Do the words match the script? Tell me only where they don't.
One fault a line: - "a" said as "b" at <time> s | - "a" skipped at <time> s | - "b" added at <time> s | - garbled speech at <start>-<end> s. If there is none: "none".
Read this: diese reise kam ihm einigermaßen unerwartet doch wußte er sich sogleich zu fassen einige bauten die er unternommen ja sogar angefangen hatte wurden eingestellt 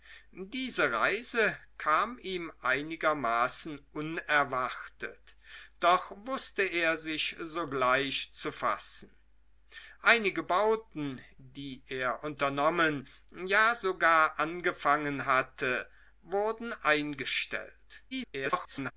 - garbled speech at 18.1-18.9 s